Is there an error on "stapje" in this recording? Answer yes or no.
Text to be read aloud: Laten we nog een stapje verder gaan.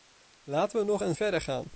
yes